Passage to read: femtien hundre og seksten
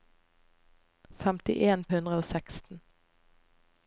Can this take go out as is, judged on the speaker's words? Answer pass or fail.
pass